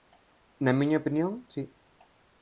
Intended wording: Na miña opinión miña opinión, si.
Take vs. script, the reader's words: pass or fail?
fail